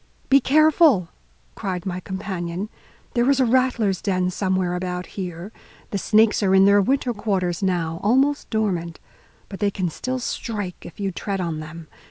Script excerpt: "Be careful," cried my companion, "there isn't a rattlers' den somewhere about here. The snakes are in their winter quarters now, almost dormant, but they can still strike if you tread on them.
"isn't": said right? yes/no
no